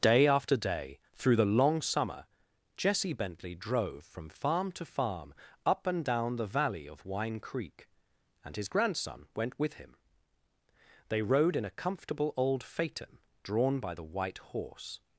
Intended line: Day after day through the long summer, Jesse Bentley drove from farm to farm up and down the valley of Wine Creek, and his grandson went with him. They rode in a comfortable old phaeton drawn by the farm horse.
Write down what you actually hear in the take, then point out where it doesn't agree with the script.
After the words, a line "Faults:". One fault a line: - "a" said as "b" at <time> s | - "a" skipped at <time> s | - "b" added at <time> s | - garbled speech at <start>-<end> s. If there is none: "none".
Day after day through the long summer, Jesse Bentley drove from farm to farm up and down the valley of Wine Creek, and his grandson went with him. They rode in a comfortable old phaeton drawn by the white horse.
Faults:
- "farm" said as "white" at 14.0 s